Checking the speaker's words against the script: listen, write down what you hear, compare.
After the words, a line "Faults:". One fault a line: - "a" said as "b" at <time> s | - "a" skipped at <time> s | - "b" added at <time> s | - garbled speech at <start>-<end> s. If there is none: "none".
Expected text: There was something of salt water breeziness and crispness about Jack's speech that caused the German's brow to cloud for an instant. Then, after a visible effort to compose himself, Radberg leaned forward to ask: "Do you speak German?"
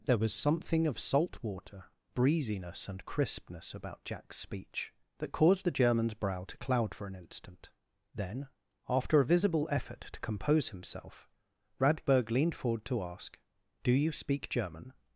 There was something of salt water breeziness and crispness about Jack's speech that caused the German's brow to cloud for an instant. Then, after a visible effort to compose himself, Radberg leaned forward to ask: "Do you speak German?"
Faults:
none